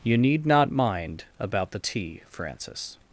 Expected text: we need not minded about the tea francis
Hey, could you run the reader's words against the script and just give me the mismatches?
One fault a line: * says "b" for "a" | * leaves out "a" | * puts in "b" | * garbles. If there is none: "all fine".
* says "you" for "we"
* says "mind" for "minded"